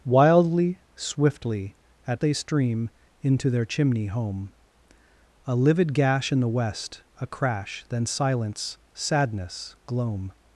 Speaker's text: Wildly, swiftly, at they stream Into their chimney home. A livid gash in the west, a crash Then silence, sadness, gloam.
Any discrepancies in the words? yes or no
no